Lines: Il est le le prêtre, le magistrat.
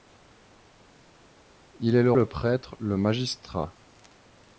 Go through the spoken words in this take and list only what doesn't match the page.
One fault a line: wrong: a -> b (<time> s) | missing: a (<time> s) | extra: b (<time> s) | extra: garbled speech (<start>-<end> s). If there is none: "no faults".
no faults